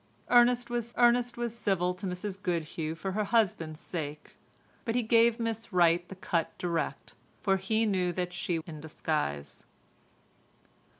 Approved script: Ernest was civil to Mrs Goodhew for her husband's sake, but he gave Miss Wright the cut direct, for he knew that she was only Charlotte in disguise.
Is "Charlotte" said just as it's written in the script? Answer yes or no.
no